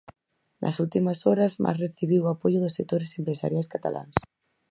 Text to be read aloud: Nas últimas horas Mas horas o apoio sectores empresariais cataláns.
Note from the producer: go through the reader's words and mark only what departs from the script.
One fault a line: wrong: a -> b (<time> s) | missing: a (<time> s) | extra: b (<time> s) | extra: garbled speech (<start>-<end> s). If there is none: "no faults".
wrong: horas -> recibiu (1.9 s)
extra: dos (2.6 s)